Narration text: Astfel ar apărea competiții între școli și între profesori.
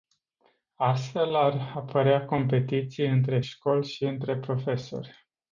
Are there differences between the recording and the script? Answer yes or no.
no